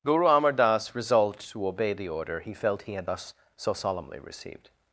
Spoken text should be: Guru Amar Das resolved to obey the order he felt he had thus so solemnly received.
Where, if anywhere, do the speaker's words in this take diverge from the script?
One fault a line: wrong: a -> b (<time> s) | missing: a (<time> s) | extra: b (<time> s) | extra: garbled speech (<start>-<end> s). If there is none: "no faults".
no faults